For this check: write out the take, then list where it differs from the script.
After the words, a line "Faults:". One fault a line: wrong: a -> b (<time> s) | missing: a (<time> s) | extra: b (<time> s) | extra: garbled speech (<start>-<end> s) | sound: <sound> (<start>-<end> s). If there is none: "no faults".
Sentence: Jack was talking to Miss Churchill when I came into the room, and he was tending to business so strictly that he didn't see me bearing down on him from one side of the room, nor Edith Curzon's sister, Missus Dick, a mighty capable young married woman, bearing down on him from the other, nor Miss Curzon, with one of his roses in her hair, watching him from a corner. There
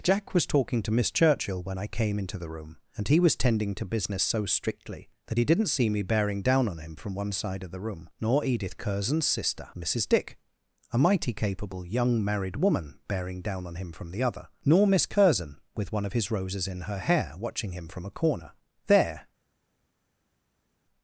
Jack was talking to Miss Churchill when I came into the room, and he was tending to business so strictly that he didn't see me bearing down on him from one side of the room, nor Edith Curzon's sister, Missus Dick, a mighty capable young married woman, bearing down on him from the other, nor Miss Curzon, with one of his roses in her hair, watching him from a corner. There
Faults:
no faults